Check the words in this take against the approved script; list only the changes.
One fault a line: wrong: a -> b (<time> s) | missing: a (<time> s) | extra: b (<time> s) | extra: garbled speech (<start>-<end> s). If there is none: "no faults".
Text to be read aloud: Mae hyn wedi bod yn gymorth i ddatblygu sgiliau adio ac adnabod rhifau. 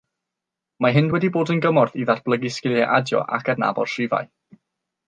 no faults